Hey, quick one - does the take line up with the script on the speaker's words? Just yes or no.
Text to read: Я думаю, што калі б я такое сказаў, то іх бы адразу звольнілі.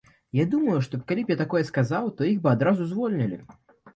yes